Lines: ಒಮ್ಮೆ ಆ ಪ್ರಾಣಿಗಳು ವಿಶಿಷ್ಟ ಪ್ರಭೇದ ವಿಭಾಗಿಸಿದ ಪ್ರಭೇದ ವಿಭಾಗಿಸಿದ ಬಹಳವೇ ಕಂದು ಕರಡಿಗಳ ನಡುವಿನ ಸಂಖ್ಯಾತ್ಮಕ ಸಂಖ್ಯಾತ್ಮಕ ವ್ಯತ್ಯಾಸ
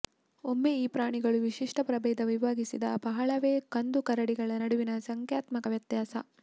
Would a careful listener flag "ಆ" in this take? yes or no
yes